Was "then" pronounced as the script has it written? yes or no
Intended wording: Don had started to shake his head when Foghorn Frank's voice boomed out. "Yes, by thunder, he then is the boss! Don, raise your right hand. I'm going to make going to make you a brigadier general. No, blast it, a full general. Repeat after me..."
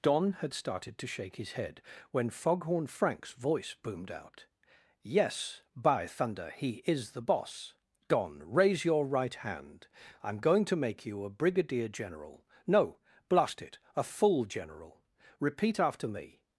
no